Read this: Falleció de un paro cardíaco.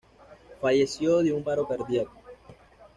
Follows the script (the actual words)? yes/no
yes